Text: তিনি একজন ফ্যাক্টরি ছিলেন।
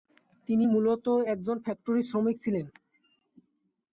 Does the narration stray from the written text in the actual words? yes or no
yes